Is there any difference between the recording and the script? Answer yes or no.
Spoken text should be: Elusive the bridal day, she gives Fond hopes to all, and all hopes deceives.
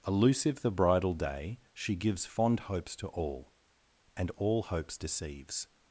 no